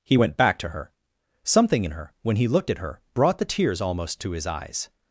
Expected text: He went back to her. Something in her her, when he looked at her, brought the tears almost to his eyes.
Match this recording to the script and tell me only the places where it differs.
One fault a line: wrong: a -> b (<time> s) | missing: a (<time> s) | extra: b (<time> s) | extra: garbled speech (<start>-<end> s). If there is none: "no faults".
missing: her (2.1 s)